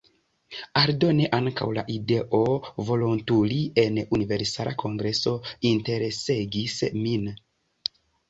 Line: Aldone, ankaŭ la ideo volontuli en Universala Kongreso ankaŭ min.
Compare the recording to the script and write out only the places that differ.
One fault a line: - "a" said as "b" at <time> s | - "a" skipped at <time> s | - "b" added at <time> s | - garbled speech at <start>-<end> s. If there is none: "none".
- "ankaŭ" said as "interesegis" at 5.7 s